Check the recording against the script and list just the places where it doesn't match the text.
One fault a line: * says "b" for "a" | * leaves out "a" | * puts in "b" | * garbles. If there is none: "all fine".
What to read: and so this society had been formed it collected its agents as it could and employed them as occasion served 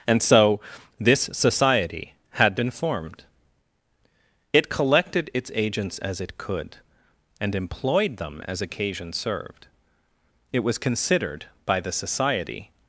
* puts in "it was considered by the society"